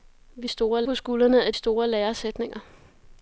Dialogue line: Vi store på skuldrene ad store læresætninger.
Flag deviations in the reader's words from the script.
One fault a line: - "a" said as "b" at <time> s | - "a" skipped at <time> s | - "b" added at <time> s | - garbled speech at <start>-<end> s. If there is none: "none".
none